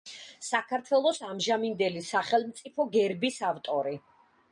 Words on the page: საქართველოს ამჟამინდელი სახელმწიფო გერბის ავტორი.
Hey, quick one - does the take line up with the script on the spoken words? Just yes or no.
yes